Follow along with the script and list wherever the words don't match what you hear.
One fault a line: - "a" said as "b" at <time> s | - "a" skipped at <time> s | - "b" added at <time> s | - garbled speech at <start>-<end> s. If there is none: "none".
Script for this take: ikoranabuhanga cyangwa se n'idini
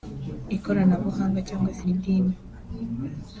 none